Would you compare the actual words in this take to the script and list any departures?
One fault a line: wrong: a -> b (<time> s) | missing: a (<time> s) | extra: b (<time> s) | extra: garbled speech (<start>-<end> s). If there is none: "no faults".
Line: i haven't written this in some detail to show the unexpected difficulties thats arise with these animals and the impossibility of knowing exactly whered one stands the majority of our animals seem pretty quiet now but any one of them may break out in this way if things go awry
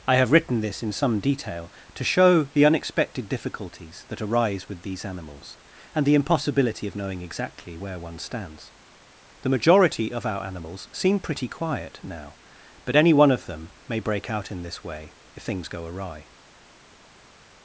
wrong: haven't -> have (0.1 s)
wrong: thats -> that (4.1 s)
wrong: whered -> where (7.8 s)